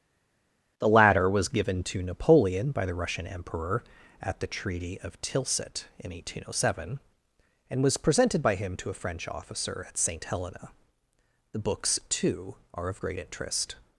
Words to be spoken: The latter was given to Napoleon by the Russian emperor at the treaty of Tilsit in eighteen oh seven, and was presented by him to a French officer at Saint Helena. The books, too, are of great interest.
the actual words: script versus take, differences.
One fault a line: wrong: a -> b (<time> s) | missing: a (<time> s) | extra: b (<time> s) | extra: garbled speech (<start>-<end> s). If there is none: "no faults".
no faults